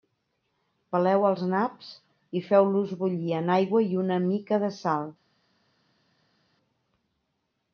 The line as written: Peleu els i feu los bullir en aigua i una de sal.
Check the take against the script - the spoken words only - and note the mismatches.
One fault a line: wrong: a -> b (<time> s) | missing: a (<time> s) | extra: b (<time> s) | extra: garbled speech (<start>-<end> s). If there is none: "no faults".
extra: naps (1.5 s)
extra: mica (4.3 s)